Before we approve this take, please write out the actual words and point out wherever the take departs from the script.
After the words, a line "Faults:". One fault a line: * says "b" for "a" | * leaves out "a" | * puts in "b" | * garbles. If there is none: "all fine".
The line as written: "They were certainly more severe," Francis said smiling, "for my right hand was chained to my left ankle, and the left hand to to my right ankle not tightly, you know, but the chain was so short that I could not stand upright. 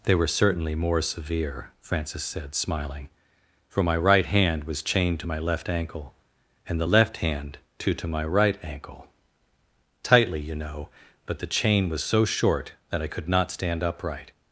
"They were certainly more severe," Francis said smiling, "for my right hand was chained to my left ankle, and the left hand to to my right ankle tightly, you know, but the chain was so short that I could not stand upright.
Faults:
* leaves out "not"